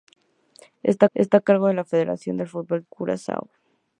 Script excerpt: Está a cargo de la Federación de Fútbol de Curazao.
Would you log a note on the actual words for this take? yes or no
yes